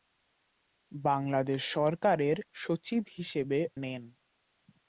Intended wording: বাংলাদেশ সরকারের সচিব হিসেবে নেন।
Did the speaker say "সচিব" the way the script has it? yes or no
yes